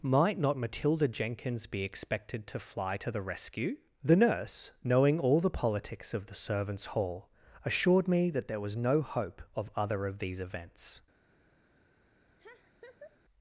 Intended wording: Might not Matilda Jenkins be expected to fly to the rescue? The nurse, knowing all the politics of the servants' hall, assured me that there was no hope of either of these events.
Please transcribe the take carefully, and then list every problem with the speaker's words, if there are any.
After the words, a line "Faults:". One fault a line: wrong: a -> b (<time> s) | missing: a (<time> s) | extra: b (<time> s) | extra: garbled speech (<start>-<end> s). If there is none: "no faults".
Might not Matilda Jenkins be expected to fly to the rescue? The nurse, knowing all the politics of the servants' hall, assured me that there was no hope of other of these events.
Faults:
wrong: either -> other (9.7 s)